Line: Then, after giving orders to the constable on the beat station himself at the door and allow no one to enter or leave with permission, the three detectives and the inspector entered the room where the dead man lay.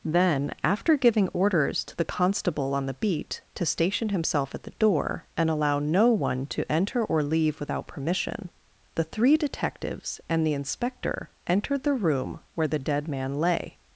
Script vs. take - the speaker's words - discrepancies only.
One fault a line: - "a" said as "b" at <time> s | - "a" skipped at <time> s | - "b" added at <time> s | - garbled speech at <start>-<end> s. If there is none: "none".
- "to" added at 3.5 s
- "with" said as "without" at 7.6 s